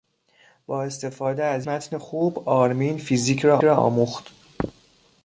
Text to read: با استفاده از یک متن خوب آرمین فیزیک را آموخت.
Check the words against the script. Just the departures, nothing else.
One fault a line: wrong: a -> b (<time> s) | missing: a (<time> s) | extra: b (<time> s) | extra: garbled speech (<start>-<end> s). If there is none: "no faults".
missing: یک (1.7 s)
extra: را (3.6 s)